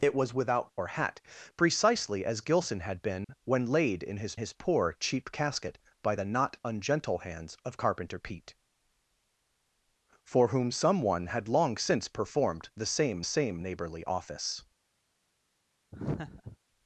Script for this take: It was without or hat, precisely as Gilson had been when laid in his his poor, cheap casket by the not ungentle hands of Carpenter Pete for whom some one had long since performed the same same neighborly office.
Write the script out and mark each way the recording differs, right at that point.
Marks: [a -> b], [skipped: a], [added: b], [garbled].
It was without or hat, precisely as Gilson had been when laid in his his poor, cheap casket by the not ungentle hands of Carpenter Pete for whom some one had long since performed the same same neighborly office.